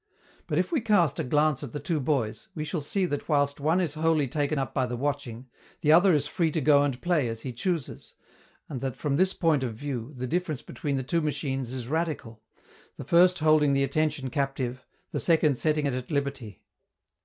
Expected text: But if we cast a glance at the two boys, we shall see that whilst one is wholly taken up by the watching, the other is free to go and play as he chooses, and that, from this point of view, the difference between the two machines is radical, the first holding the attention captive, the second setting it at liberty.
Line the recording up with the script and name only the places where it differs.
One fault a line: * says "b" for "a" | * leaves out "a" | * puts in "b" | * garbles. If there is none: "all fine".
all fine